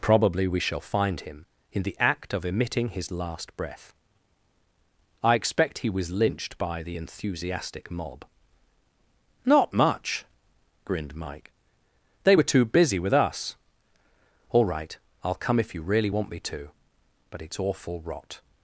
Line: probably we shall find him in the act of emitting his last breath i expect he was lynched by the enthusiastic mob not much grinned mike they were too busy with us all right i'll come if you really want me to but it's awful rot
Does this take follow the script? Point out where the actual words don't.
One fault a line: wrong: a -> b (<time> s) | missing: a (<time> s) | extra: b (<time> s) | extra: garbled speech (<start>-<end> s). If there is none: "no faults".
no faults